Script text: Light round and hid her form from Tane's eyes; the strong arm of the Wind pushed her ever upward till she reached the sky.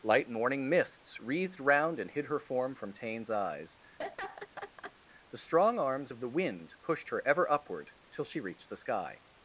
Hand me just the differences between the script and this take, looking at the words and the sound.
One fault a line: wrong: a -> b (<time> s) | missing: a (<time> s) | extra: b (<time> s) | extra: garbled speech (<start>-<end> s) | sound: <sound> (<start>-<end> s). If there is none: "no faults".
extra: morning mists wreathed (0.3 s)
sound: laugh (4.0-4.9 s)
wrong: arm -> arms (5.8 s)